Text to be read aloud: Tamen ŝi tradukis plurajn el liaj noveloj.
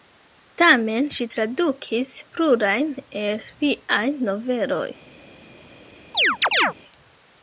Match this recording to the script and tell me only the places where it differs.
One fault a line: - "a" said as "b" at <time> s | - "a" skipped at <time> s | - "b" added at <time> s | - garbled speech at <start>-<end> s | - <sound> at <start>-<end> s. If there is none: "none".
- chirp at 6.1-6.7 s